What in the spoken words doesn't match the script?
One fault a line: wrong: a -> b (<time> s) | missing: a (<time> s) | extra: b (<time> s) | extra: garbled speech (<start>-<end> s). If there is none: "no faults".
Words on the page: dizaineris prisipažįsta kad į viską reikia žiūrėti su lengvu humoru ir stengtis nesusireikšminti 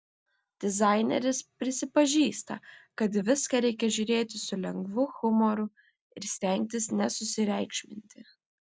no faults